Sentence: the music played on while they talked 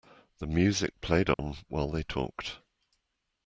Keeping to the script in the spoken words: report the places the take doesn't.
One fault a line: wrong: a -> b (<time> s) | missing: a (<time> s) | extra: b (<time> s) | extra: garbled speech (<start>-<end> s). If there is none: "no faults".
no faults